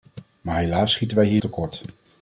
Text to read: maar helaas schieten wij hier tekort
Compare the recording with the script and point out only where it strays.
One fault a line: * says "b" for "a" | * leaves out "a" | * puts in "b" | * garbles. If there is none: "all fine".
all fine